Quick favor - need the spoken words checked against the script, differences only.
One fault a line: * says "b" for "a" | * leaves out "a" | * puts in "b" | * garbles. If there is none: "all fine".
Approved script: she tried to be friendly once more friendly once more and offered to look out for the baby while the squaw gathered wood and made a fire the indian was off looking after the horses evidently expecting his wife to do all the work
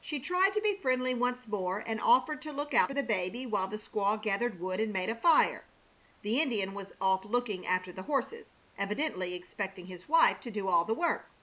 * leaves out "friendly once more"